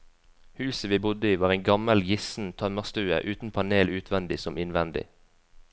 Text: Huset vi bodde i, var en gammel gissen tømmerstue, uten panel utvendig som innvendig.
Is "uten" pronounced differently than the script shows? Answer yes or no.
no